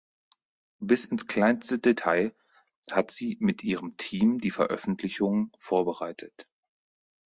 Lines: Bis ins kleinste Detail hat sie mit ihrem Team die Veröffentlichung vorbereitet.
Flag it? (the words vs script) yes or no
no